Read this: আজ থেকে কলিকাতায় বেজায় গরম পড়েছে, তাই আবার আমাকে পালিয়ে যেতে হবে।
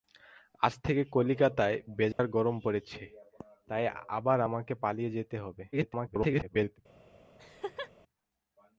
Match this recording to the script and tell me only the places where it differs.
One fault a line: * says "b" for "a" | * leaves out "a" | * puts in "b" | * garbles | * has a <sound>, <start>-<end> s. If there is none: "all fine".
* has a dropout, 2.1-2.2 s
* garbles
* has a laugh, 7.4-7.9 s